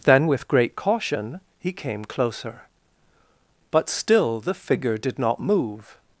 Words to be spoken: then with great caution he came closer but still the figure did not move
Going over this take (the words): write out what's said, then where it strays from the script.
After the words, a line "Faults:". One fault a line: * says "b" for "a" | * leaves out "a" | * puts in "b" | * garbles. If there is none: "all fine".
then with great caution he came closer but still the figure did not move
Faults:
all fine